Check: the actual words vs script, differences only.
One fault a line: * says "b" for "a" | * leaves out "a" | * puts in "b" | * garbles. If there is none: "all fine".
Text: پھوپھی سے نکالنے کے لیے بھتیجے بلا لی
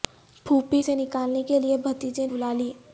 all fine